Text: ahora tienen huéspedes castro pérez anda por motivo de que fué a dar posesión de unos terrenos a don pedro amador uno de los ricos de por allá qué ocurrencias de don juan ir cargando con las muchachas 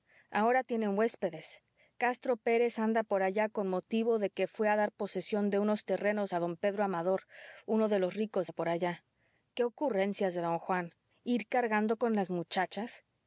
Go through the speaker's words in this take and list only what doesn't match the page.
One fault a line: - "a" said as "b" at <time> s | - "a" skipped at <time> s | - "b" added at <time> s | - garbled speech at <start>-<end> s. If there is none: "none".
- "allá con" added at 3.2 s